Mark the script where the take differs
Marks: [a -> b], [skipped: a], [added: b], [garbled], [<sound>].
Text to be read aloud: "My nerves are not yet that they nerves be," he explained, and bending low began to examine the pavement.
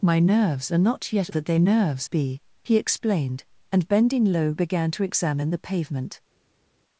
"My nerves are not yet that they nerves be," he explained, and bending low began to examine the pavement.